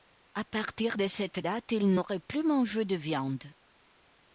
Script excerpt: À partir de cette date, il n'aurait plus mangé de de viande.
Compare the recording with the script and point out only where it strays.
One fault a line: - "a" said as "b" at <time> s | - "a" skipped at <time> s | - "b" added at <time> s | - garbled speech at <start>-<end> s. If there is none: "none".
- "de" skipped at 3.0 s